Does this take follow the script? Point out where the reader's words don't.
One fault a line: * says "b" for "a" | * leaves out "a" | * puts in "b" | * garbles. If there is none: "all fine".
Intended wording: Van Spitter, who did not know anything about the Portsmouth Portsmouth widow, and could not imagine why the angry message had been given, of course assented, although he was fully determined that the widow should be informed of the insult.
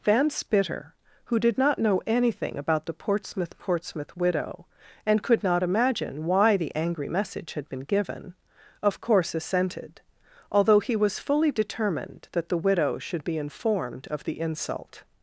all fine